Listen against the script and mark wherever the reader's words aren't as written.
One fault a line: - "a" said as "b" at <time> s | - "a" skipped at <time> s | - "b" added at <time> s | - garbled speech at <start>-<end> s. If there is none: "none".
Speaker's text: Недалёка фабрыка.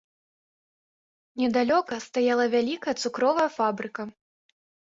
- "стаяла вялікая цукровая" added at 2.1 s